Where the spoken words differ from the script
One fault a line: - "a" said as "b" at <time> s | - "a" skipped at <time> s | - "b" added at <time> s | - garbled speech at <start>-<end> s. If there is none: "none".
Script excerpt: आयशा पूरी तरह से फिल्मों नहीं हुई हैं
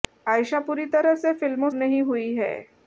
none